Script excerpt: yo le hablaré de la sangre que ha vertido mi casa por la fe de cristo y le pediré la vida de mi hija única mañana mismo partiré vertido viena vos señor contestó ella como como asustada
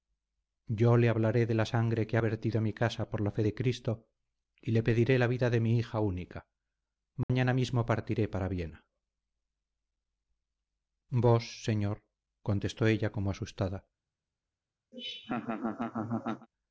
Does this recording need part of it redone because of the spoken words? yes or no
yes